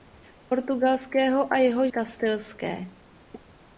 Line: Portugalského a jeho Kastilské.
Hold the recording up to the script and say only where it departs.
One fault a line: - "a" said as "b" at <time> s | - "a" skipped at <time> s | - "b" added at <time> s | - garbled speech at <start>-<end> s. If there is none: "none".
none